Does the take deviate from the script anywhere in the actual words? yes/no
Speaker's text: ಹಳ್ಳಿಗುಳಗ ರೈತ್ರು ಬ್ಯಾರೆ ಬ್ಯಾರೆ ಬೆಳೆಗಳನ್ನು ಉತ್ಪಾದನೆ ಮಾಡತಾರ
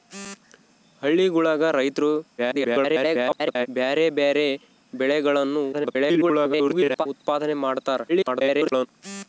yes